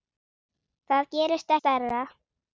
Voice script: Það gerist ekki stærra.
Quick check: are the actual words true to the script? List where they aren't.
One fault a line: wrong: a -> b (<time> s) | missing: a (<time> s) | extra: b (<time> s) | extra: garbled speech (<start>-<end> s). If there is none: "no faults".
missing: ekki (1.5 s)